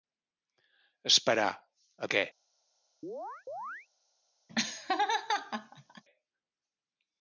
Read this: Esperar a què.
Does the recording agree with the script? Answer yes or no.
yes